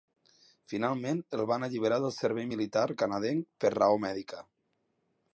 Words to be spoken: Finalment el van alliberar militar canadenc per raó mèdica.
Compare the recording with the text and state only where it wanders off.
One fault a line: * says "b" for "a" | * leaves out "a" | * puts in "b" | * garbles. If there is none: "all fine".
* puts in "del servei"